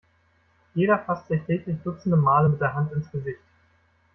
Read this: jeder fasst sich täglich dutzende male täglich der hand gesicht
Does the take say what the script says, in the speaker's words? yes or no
no